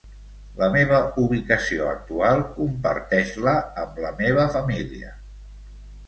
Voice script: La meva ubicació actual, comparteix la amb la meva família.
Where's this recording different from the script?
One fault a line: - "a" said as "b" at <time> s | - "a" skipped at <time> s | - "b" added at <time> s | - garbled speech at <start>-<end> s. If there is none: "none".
none